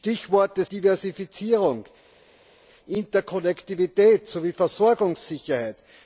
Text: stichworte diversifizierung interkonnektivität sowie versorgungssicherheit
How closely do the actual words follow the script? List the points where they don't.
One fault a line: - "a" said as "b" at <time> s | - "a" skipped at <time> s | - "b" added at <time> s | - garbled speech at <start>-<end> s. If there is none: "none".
none